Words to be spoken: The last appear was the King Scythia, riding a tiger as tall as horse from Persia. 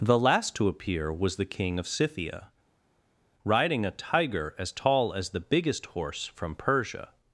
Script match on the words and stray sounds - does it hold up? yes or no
no